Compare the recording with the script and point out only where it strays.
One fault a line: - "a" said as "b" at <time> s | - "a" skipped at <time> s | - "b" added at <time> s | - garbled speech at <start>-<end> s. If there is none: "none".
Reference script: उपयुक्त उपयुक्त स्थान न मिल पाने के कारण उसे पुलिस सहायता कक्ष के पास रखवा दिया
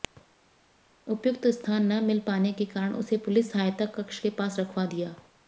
- "उपयुक्त" skipped at 1.4 s